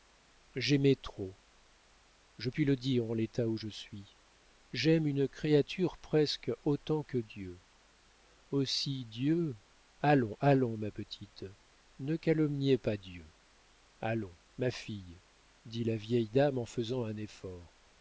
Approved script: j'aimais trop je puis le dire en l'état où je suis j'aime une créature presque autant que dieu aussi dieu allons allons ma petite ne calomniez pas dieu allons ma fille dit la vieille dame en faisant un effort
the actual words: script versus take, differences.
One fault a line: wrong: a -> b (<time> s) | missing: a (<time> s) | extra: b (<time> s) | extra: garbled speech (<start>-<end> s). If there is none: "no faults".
no faults